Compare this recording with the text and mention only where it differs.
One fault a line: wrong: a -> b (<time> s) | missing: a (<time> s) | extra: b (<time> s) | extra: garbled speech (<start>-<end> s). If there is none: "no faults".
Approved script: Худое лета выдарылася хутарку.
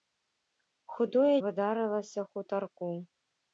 missing: лета (1.4 s)